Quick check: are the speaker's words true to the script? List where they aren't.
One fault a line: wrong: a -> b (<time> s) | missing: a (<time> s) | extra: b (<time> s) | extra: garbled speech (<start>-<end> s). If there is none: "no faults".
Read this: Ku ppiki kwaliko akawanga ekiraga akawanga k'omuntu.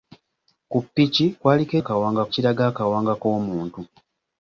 no faults